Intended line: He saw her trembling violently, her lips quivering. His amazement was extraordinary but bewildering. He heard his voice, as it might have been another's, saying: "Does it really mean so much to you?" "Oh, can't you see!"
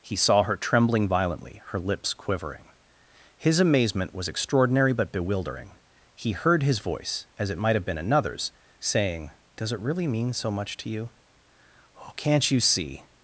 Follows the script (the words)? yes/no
yes